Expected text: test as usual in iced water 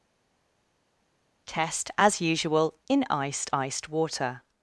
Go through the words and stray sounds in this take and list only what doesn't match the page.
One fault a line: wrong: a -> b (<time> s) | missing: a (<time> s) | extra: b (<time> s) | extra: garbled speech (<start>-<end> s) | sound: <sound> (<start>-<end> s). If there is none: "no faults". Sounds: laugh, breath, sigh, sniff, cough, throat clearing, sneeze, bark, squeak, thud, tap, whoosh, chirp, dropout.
extra: iced (3.5 s)